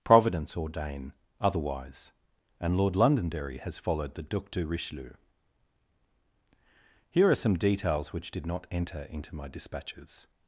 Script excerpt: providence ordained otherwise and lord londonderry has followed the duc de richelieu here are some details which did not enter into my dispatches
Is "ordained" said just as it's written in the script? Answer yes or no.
no